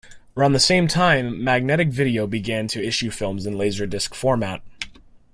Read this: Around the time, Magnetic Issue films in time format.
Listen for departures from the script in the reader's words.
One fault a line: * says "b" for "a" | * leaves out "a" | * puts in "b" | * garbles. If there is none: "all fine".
* puts in "same"
* puts in "Video began to"
* says "laserdisc" for "time"